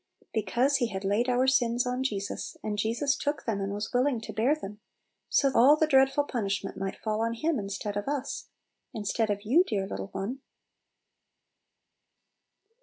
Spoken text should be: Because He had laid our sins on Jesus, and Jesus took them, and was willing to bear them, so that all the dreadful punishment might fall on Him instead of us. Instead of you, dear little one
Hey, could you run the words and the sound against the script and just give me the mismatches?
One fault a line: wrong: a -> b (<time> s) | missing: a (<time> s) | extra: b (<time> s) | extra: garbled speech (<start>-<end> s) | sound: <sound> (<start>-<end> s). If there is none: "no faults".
missing: that (5.5 s)